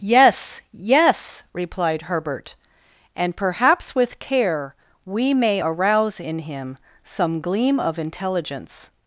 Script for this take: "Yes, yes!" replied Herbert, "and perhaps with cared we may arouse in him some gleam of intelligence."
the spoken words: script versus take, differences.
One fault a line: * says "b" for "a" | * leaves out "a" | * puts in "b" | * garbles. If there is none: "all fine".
* says "care" for "cared"